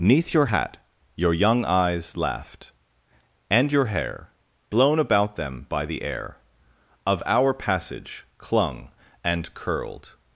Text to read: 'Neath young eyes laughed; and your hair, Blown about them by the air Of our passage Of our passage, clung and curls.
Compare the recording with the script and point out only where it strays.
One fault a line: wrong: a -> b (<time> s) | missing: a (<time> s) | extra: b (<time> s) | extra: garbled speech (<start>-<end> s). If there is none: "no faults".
extra: your hat Your (0.3 s)
missing: Of our passage (8.3 s)
wrong: curls -> curled (9.5 s)